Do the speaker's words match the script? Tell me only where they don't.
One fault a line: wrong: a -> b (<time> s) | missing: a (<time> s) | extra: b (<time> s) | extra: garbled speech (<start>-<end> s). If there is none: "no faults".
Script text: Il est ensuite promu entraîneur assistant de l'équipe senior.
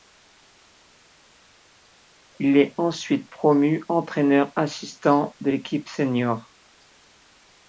no faults